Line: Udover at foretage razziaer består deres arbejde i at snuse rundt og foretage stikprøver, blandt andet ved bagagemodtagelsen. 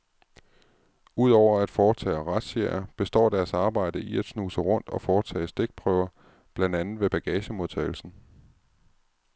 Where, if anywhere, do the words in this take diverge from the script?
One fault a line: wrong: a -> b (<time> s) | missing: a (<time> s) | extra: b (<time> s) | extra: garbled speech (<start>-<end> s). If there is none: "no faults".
no faults